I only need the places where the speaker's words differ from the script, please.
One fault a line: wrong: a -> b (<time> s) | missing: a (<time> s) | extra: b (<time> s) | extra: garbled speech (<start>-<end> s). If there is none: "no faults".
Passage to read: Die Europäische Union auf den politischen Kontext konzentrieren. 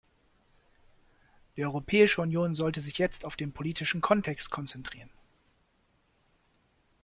extra: sollte sich jetzt (2.5 s)